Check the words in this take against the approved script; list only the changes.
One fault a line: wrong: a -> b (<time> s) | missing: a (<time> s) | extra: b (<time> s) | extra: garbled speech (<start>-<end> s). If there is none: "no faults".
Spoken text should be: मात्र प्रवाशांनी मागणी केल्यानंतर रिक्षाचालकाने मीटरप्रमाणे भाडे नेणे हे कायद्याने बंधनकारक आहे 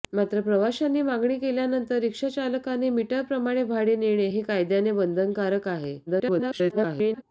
extra: garbled speech (6.1-7.2 s)